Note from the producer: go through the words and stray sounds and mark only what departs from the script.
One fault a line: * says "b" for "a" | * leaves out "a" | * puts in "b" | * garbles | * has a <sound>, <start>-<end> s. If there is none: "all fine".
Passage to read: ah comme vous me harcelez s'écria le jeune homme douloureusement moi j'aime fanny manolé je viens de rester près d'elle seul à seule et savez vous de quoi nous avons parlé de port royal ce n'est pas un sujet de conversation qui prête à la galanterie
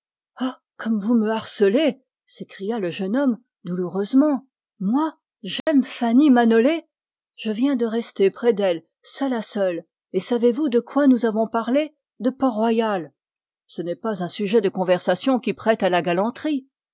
* has a dropout, 5.6-5.7 s